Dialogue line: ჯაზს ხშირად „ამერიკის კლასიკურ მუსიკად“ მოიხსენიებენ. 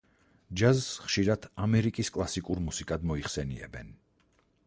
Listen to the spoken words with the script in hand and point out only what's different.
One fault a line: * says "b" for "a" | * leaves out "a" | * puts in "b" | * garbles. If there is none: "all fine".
all fine